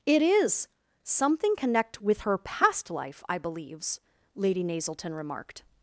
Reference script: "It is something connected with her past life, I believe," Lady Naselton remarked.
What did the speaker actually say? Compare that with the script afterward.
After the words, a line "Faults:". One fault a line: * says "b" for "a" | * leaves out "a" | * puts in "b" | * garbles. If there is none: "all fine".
"It is something connect with her past life, I believes," Lady Naselton remarked.
Faults:
* says "connect" for "connected"
* says "believes" for "believe"